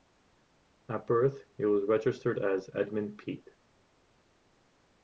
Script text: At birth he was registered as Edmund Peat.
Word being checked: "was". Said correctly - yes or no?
yes